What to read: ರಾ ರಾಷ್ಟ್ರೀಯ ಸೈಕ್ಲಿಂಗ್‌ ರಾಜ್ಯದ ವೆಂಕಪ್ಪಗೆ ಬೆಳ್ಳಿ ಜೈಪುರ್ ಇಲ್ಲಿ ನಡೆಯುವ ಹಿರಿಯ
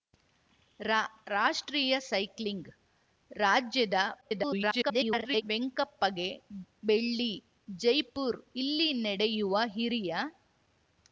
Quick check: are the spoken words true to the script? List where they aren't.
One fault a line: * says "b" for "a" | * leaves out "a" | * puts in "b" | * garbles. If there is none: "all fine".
* garbles